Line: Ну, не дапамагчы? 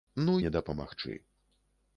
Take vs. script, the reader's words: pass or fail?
pass